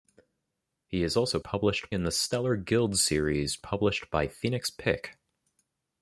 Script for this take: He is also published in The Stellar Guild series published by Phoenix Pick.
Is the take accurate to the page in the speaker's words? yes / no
yes